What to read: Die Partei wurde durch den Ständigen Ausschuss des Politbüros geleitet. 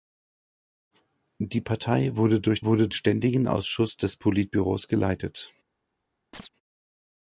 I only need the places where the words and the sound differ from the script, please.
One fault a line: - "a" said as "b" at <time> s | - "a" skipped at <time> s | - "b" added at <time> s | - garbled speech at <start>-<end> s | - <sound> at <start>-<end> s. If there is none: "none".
- "den" said as "wurde" at 2.6 s
- chirp at 6.3-6.5 s